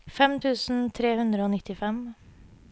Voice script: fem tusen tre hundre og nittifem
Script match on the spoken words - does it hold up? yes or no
yes